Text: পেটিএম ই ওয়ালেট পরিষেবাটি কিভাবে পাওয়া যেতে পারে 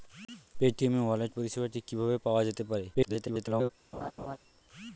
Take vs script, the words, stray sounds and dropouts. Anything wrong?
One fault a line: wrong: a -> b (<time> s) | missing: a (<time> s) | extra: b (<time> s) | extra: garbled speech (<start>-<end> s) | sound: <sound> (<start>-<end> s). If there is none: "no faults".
extra: garbled speech (2.9-3.7 s)
sound: laugh (3.9-4.4 s)